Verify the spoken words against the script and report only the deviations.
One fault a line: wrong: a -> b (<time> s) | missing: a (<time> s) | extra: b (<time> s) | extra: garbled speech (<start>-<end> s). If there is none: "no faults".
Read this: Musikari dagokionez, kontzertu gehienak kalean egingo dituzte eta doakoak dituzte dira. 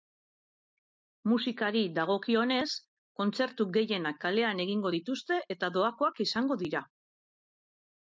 wrong: dituzte -> izango (6.3 s)